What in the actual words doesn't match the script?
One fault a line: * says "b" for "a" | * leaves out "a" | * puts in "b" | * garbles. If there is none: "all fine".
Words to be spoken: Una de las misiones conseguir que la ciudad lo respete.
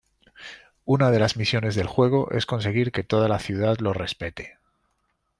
* puts in "del juego es"
* puts in "toda"